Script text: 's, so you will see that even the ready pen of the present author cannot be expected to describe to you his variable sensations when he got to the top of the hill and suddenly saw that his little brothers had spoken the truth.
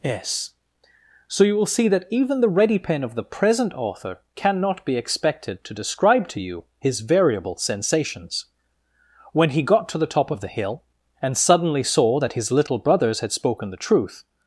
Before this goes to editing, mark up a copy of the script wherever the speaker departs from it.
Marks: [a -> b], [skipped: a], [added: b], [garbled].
's, so you will see that even the ready pen of the present author cannot be expected to describe to you his variable sensations when he got to the top of the hill and suddenly saw that his little brothers had spoken the truth.